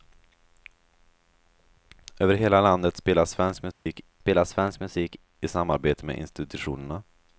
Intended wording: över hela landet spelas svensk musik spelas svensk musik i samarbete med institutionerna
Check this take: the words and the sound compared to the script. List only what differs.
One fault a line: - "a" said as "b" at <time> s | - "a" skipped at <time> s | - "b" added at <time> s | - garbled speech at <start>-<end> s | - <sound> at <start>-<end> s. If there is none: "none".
- dropout at 3.7-3.9 s